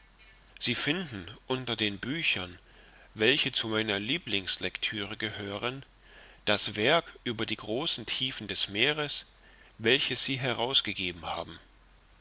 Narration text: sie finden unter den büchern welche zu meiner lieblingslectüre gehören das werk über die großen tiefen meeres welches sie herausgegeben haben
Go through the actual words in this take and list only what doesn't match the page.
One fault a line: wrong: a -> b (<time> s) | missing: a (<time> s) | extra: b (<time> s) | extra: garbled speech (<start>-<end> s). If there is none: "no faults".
extra: des (8.5 s)